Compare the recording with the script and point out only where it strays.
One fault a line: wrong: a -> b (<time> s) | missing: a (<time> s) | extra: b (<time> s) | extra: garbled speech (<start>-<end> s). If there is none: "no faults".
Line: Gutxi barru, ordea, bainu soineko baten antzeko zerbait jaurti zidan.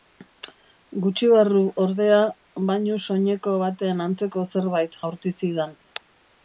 no faults